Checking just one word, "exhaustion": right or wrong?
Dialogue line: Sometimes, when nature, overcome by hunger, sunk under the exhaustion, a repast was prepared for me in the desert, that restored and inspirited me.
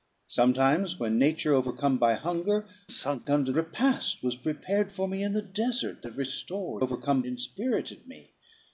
wrong